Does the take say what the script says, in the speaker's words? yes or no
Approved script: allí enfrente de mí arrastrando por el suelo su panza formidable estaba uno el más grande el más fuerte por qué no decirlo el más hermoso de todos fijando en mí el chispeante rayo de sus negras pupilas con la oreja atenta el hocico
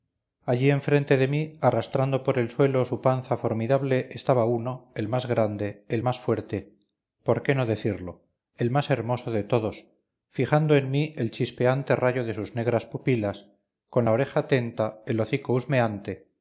yes